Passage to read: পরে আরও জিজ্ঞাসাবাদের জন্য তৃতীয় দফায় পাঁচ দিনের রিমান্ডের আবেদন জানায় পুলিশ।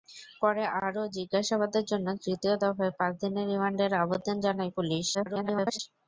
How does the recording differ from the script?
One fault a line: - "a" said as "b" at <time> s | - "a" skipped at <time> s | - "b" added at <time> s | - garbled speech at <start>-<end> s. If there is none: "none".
- garbled speech at 5.1-5.8 s